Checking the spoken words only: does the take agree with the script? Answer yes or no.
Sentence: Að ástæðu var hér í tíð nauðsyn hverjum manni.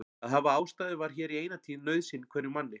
no